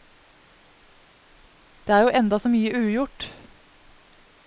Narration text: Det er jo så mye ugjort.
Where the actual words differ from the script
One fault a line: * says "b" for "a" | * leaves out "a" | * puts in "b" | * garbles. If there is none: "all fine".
* puts in "enda"